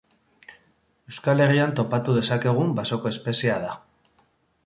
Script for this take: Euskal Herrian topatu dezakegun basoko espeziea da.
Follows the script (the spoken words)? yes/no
yes